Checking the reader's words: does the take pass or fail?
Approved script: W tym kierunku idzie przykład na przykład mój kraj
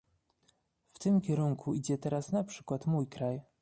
fail